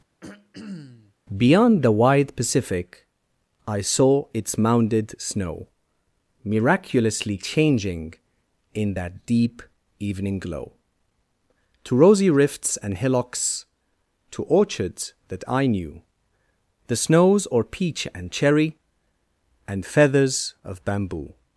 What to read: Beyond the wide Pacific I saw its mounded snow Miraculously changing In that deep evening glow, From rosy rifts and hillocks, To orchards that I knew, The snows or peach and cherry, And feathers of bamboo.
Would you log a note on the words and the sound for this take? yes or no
yes